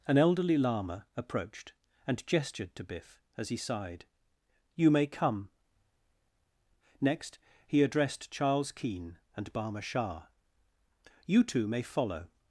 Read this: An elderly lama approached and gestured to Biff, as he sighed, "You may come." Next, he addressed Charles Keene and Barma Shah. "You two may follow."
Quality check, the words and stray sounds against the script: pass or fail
pass